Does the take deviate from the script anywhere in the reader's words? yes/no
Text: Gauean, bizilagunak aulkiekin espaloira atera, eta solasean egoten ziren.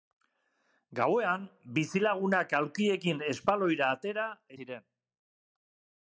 yes